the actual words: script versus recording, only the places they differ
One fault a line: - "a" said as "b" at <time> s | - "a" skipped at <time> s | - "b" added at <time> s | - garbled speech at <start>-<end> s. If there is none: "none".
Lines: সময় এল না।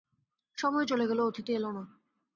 - "চলে গেল অতিথি" added at 0.8 s